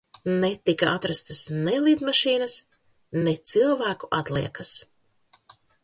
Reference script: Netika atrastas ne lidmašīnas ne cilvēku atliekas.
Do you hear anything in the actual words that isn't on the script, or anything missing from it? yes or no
no